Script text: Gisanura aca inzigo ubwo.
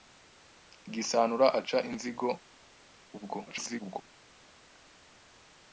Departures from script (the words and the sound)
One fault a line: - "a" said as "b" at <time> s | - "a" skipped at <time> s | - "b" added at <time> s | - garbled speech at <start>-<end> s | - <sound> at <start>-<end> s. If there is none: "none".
- garbled speech at 3.5-4.0 s